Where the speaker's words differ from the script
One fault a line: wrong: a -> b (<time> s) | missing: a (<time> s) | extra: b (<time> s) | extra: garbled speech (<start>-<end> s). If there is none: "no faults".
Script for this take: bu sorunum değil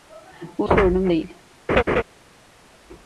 no faults